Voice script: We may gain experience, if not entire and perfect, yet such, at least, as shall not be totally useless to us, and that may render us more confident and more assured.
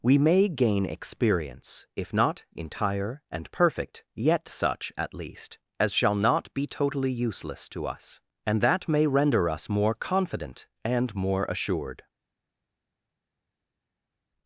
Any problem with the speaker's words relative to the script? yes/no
no